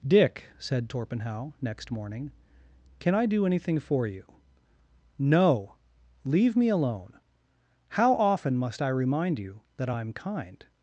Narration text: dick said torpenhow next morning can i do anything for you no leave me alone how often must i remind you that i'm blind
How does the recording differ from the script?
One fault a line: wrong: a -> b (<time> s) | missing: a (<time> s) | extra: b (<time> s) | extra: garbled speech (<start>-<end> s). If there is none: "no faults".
wrong: blind -> kind (10.1 s)